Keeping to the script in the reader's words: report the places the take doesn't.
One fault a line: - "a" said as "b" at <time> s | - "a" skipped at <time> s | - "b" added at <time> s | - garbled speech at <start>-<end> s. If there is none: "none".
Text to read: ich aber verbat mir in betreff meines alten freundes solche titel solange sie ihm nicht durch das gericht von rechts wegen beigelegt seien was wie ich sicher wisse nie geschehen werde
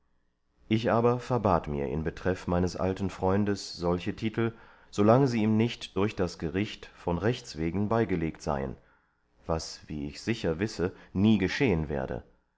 none